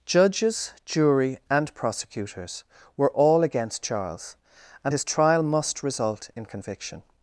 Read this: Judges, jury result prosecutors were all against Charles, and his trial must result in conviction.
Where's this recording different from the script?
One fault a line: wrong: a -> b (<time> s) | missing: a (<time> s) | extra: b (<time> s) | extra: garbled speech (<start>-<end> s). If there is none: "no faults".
wrong: result -> and (1.5 s)